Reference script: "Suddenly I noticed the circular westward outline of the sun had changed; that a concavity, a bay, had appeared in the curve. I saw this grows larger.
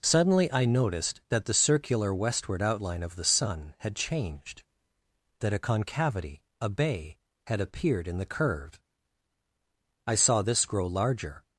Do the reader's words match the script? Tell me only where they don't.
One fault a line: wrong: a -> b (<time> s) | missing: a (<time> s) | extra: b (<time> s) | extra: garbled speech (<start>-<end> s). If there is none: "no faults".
extra: that (1.3 s)
wrong: grows -> grow (10.7 s)